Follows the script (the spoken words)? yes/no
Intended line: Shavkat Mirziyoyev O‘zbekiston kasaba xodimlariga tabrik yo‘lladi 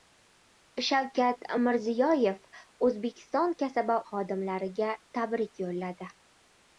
yes